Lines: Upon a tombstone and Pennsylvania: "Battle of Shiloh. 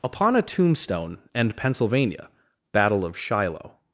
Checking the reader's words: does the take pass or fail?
pass